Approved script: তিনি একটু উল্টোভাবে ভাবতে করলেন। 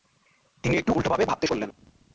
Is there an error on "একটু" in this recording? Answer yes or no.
no